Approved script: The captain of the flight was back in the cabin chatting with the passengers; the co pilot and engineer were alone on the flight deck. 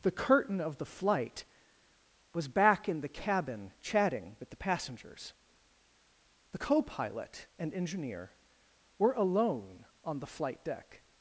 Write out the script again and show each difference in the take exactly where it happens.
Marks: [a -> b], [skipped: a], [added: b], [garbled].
The [captain -> curtain] of the flight was back in the cabin chatting with the passengers; the co pilot and engineer were alone on the flight deck.